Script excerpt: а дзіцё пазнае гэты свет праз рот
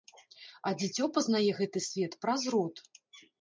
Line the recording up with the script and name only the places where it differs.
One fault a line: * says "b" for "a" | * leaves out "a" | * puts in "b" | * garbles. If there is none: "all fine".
all fine